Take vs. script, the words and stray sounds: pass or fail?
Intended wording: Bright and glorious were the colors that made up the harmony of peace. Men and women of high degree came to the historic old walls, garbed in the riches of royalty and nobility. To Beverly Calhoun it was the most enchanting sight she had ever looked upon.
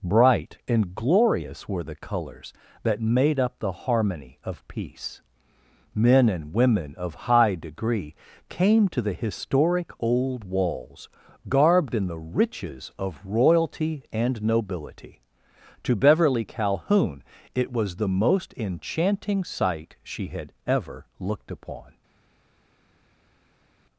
pass